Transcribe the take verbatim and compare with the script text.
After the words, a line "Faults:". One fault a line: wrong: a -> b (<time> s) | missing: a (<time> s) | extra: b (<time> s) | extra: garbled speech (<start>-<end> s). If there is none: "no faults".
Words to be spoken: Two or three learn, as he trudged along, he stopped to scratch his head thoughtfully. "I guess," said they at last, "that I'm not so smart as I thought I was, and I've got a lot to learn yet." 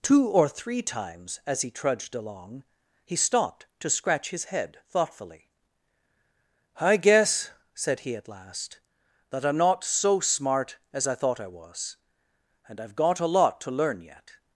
Two or three times, as he trudged along, he stopped to scratch his head thoughtfully. "I guess," said he at last, "that I'm not so smart as I thought I was, and I've got a lot to learn yet."
Faults:
wrong: learn -> times (0.8 s)
wrong: they -> he (8.0 s)